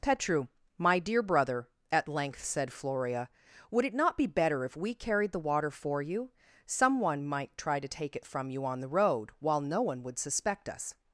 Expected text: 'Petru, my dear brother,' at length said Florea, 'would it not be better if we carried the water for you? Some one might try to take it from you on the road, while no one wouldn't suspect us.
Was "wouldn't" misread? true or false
true